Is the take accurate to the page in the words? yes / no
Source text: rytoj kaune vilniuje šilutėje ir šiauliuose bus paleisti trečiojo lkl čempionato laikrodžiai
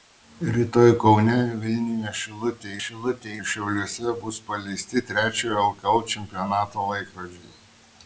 no